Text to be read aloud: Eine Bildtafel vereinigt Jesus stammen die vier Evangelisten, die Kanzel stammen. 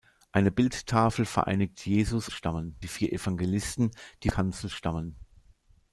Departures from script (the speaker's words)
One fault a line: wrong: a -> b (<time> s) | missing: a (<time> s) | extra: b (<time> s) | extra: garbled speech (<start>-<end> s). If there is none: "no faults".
no faults